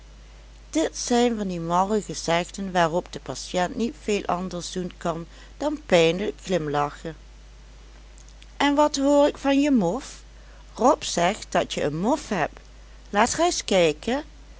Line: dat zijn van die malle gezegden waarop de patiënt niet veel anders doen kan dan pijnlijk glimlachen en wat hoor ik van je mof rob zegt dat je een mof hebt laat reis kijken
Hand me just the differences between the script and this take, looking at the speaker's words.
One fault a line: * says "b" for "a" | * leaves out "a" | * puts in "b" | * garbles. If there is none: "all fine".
* says "dit" for "dat"